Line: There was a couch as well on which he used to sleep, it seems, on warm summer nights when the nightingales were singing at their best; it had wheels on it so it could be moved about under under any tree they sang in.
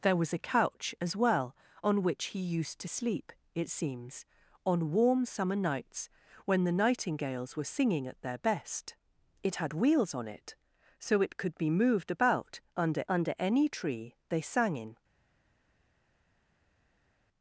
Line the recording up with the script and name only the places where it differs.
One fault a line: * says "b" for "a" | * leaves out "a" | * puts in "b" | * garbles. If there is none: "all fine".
all fine